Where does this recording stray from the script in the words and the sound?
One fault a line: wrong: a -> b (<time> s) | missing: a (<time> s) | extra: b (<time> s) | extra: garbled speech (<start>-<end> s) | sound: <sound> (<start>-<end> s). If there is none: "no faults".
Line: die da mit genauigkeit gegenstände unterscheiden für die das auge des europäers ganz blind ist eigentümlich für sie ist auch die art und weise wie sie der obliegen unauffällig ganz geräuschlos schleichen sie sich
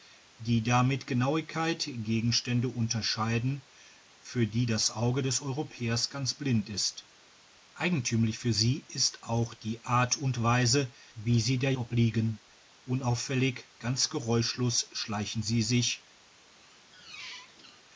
sound: squeak (16.5-17.8 s)